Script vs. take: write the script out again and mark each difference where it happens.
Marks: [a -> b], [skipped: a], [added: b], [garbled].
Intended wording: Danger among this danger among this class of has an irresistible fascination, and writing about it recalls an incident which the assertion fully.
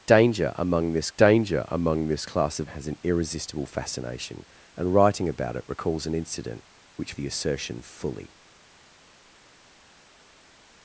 Danger among this danger among this class of has an irresistible fascination, and writing about it recalls an incident which the assertion fully.